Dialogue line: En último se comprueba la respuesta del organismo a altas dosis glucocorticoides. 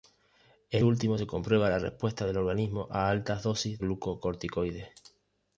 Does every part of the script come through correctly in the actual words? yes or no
yes